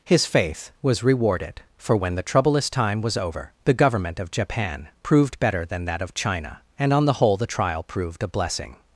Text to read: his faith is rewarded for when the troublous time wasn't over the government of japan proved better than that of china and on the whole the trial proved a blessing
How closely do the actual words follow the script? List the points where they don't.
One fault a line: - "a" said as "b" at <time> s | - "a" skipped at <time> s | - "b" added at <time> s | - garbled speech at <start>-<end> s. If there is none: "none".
- "is" said as "was" at 0.8 s
- "wasn't" said as "was" at 3.0 s